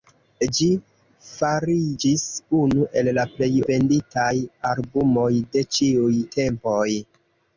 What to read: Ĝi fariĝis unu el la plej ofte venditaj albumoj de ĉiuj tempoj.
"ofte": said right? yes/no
no